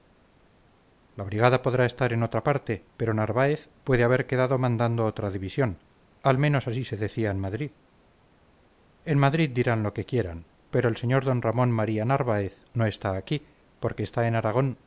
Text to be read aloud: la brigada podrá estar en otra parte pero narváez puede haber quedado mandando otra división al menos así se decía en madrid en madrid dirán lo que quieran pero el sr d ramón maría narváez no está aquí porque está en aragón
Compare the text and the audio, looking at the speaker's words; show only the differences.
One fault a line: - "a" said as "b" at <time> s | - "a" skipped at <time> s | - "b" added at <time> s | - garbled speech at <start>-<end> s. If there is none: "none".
none